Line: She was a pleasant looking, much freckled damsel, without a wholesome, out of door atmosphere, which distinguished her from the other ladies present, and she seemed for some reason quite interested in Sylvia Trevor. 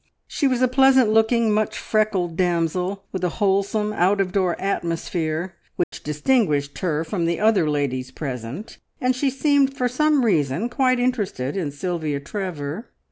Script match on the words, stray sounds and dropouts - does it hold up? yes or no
no